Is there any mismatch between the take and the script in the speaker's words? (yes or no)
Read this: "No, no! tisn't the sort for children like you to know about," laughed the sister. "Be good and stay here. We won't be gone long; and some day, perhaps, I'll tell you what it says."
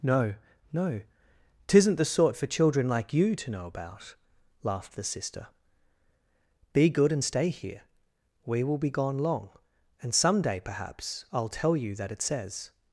yes